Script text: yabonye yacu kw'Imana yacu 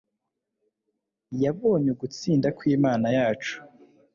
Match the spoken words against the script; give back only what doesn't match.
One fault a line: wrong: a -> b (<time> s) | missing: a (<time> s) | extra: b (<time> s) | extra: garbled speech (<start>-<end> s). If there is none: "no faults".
wrong: yacu -> ugutsinda (1.9 s)